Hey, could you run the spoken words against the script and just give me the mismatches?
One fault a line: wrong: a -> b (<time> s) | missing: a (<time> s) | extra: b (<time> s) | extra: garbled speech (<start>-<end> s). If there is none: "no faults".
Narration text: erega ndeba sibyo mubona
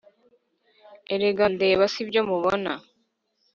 no faults